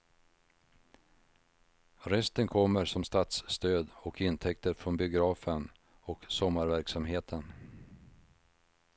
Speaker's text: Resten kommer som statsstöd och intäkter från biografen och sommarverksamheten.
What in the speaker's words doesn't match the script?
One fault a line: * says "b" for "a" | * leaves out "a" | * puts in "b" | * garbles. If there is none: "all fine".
all fine